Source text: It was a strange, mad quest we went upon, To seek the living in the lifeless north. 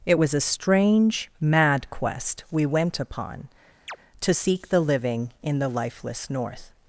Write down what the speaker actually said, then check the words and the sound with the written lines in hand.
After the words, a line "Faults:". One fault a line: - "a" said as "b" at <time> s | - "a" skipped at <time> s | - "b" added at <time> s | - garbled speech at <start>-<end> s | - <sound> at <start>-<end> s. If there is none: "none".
It was a strange, mad quest we went upon, To seek the living in the lifeless north.
Faults:
- chirp at 3.9-4.0 s